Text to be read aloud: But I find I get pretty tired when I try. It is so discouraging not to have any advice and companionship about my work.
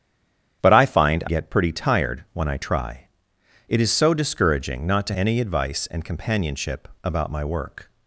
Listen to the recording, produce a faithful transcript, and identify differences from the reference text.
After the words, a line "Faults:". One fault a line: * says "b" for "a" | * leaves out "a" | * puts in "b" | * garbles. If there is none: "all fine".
But I find get pretty tired when I try. It is so discouraging not to any advice and companionship about my work.
Faults:
* leaves out "I"
* leaves out "have"